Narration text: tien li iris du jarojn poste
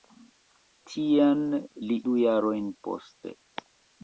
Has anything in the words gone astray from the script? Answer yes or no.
yes